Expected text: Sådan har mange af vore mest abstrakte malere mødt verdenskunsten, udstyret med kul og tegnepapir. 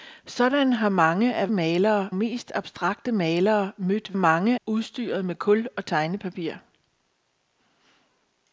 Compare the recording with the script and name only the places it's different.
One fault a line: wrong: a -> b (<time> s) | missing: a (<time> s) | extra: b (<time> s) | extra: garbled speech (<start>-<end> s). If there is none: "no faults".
wrong: vore -> malere (1.5 s)
wrong: verdenskunsten -> mange (4.1 s)